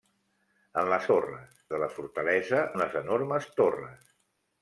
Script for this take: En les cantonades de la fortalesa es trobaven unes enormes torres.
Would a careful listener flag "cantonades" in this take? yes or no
yes